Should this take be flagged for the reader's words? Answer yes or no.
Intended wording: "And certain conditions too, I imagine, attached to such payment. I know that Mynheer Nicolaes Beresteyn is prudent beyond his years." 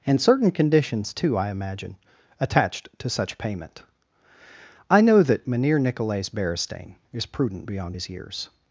no